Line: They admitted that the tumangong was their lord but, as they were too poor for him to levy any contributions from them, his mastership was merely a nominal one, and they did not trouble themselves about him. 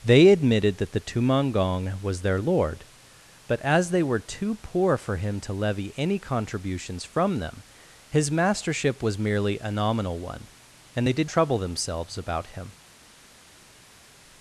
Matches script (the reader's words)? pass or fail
fail